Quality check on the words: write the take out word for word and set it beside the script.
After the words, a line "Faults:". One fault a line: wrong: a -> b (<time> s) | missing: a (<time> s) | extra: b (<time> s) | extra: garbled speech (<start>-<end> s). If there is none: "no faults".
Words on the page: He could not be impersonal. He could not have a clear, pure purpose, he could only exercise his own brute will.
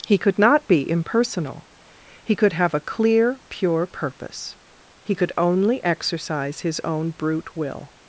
He could not be impersonal. He could have a clear, pure purpose, he could only exercise his own brute will.
Faults:
missing: not (2.5 s)